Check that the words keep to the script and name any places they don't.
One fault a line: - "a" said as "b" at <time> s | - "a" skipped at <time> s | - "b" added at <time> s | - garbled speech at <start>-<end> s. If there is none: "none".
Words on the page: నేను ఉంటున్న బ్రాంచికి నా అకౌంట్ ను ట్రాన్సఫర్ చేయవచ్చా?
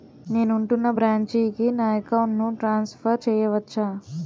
none